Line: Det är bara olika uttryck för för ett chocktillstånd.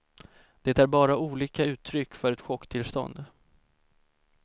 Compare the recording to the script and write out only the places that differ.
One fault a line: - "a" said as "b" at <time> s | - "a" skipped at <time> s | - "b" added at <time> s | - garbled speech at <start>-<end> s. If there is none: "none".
- "för" skipped at 2.3 s